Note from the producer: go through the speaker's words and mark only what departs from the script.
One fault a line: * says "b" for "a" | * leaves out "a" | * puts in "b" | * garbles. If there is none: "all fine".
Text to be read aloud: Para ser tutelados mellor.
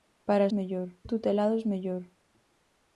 * says "mellor" for "ser"